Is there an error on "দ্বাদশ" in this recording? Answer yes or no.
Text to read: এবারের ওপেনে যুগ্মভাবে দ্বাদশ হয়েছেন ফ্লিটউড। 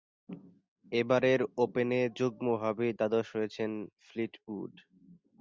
no